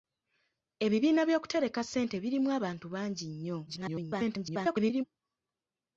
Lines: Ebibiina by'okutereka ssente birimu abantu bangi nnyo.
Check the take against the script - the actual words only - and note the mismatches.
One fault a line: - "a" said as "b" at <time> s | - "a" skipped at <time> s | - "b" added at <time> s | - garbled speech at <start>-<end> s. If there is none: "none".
- garbled speech at 3.7-5.0 s